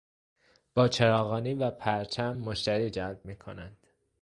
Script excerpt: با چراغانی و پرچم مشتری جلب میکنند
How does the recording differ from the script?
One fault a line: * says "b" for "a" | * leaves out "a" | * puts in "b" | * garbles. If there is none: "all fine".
all fine